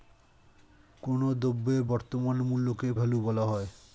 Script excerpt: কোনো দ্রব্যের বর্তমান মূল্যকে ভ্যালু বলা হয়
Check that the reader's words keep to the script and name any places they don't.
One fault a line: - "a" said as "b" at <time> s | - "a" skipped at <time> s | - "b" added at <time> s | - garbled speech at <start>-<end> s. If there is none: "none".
none